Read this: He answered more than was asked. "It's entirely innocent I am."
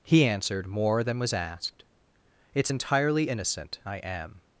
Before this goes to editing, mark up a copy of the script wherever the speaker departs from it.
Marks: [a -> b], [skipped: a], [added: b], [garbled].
He answered more than was asked. "It's entirely innocent I am."